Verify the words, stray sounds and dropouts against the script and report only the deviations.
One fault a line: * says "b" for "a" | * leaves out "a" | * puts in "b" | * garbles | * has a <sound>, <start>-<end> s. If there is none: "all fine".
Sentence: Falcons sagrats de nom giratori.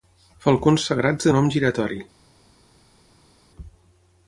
all fine